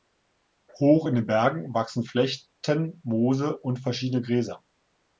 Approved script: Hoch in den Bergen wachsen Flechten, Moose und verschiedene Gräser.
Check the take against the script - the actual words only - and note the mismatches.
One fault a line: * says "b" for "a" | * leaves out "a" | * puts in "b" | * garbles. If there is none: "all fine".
all fine